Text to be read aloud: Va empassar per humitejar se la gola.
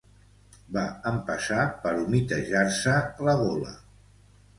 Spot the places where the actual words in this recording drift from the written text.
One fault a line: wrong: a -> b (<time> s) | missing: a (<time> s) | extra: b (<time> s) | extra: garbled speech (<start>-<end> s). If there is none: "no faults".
no faults